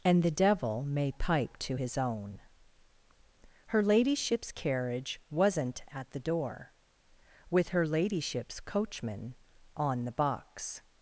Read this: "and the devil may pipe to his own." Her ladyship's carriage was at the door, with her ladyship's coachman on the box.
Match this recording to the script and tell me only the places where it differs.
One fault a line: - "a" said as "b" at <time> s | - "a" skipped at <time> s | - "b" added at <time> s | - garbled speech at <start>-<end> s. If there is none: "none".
- "was" said as "wasn't" at 5.3 s